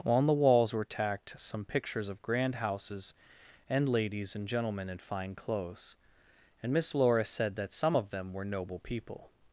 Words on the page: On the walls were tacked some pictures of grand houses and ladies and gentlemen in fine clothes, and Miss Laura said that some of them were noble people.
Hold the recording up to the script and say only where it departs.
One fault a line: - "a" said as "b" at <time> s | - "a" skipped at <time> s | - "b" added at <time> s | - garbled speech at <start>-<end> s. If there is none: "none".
none